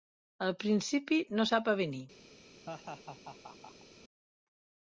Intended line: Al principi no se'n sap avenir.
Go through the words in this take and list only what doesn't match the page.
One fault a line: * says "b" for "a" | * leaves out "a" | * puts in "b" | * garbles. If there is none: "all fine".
* leaves out "se'n"